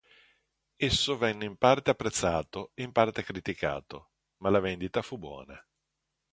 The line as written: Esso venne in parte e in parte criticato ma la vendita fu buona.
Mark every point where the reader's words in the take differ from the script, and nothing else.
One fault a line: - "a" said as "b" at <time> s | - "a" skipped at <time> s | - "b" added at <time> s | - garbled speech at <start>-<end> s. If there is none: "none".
- "apprezzato" added at 1.9 s